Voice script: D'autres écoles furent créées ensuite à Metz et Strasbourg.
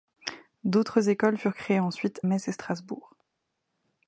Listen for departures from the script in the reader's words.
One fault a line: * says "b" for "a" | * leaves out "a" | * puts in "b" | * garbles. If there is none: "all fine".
* leaves out "à"